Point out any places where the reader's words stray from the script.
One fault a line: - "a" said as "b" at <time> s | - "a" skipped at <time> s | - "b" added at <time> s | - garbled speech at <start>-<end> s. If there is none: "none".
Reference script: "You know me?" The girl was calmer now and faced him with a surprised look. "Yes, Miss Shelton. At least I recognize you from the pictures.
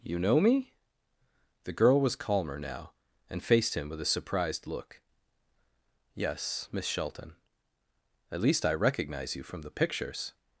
none